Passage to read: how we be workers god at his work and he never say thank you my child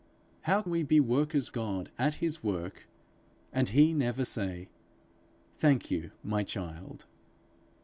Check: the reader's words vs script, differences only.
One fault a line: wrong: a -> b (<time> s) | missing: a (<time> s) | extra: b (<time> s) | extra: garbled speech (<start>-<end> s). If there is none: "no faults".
no faults